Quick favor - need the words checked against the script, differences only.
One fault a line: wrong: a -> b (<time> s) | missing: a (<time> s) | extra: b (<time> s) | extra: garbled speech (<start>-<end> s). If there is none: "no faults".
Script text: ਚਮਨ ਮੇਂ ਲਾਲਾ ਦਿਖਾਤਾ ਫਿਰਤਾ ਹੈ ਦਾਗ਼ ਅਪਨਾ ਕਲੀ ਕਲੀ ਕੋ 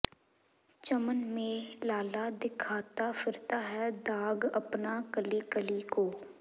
no faults